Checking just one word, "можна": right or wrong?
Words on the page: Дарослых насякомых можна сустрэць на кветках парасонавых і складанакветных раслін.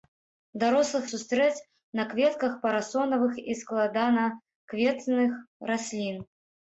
wrong